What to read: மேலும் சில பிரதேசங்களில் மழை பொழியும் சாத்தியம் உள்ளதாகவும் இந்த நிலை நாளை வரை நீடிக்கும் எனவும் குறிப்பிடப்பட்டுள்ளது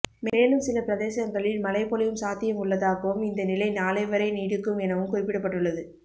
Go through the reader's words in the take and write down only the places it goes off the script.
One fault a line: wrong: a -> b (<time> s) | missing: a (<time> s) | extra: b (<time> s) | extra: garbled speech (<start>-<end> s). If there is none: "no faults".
no faults